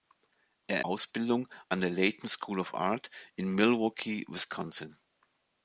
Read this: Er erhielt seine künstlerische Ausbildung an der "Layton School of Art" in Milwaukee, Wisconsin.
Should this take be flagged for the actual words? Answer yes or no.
yes